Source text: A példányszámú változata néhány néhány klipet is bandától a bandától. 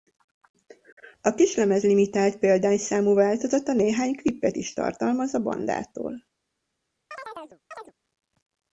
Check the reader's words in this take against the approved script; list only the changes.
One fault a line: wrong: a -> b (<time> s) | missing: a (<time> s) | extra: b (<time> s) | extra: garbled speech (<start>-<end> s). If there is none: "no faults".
extra: kislemez limitált (1.3 s)
missing: néhány (4.1 s)
wrong: bandától -> tartalmaz (4.7 s)